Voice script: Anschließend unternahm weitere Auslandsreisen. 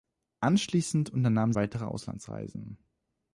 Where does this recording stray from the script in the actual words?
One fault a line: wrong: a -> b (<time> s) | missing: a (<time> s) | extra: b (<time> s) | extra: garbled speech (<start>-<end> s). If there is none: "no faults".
no faults